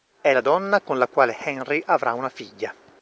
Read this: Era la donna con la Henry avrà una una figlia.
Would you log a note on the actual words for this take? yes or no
yes